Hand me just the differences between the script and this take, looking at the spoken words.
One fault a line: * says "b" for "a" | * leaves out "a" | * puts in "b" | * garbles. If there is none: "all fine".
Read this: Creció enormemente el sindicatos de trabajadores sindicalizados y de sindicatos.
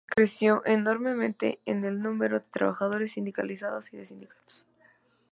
* says "número" for "sindicatos"